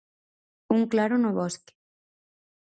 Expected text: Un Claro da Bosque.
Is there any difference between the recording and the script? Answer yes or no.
yes